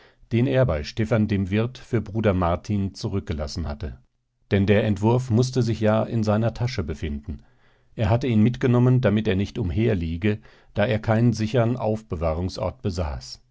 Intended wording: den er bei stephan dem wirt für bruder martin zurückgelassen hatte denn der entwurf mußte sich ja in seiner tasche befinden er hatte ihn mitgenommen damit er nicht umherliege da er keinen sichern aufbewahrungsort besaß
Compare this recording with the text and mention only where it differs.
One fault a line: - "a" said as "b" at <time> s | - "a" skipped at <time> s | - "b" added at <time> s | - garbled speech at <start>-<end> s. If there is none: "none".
none